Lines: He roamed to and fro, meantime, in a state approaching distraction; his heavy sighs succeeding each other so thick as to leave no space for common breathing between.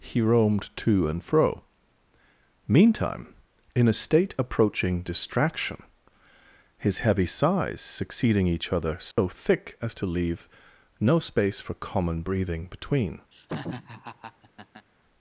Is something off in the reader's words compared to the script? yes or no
no